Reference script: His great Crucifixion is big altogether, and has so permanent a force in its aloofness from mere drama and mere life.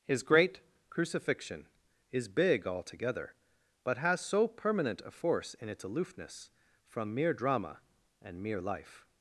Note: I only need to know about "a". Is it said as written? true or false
true